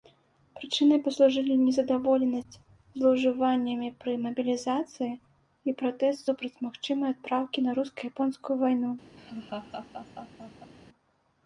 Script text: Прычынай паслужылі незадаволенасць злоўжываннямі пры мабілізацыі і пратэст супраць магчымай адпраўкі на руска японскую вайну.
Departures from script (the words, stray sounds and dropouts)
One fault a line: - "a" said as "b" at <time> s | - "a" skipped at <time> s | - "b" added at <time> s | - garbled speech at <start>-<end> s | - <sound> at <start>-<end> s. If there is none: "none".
- laugh at 9.2-10.7 s